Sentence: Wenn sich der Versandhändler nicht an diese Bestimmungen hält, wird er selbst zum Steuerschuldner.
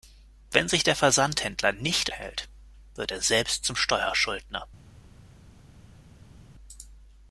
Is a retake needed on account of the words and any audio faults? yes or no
yes